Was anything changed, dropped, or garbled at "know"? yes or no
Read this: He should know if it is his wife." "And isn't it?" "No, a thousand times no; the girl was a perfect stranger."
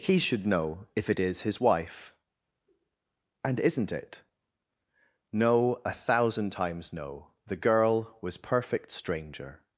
no